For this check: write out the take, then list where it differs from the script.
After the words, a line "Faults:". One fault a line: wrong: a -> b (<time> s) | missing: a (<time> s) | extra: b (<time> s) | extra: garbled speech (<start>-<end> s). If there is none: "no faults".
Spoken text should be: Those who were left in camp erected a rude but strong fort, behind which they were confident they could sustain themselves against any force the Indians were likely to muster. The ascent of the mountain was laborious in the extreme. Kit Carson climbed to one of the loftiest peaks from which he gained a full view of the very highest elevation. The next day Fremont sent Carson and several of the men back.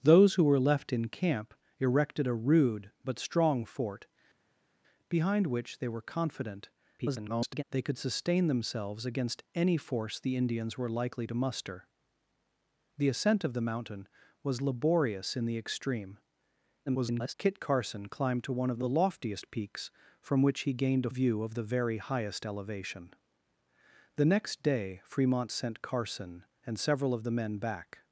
Those who were left in camp erected a rude but strong fort, behind which they were confident [garbled] they could sustain themselves against any force the Indians were likely to muster. The ascent of the mountain was laborious in the extreme. [garbled] Kit Carson climbed to one of the loftiest peaks from which he gained a view of the very highest elevation. The next day Fremont sent Carson and several of the men back.
Faults:
extra: garbled speech (7.0-7.6 s)
extra: garbled speech (16.9-17.3 s)
missing: full (21.1 s)